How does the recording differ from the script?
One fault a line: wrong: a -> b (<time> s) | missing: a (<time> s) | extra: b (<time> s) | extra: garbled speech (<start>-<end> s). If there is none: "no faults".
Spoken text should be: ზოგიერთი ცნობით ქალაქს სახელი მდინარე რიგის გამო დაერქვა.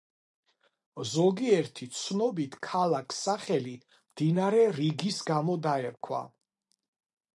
no faults